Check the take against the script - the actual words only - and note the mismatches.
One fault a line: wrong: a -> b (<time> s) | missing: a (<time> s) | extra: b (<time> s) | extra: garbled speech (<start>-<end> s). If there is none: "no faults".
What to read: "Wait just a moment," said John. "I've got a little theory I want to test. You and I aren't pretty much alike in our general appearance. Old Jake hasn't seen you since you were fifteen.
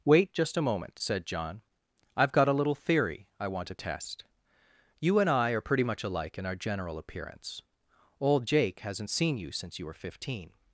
wrong: aren't -> are (5.5 s)